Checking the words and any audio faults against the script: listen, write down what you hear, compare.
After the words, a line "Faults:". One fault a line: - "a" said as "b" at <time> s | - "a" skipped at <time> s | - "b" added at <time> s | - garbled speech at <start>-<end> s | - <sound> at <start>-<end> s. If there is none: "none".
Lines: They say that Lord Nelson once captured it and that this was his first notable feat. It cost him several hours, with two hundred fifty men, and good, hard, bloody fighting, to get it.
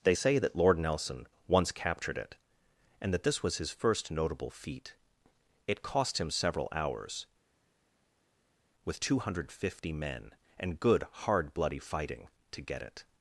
They say that Lord Nelson once captured it and that this was his first notable feat. It cost him several hours, with two hundred fifty men, and good, hard, bloody fighting, to get it.
Faults:
none